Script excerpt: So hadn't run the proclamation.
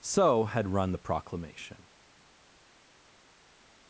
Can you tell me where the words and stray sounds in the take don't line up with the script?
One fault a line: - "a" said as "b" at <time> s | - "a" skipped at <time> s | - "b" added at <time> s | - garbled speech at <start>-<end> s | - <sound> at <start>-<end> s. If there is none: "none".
- "hadn't" said as "had" at 0.5 s